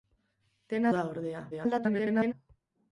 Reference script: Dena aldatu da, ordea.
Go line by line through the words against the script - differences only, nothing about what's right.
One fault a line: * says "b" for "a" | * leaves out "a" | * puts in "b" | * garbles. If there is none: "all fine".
* leaves out "aldatu"
* garbles